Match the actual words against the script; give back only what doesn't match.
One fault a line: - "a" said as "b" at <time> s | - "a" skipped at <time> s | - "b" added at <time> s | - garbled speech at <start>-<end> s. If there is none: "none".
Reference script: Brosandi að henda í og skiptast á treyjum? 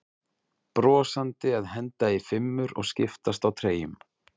- "fimmur" added at 2.3 s